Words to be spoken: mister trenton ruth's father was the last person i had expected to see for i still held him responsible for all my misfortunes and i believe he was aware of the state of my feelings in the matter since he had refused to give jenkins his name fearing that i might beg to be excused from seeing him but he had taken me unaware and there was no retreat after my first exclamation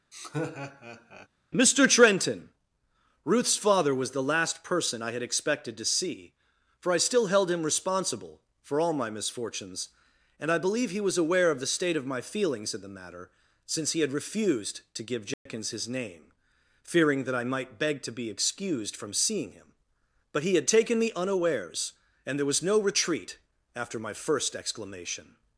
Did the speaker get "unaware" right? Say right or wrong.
wrong